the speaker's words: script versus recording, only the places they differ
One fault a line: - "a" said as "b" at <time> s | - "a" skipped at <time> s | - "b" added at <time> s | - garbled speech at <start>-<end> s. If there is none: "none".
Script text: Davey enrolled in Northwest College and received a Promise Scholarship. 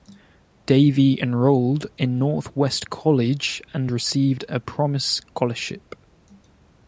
none